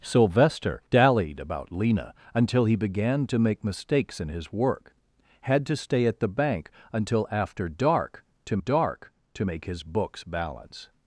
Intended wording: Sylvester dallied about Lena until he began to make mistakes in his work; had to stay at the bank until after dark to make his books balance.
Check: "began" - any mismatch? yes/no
no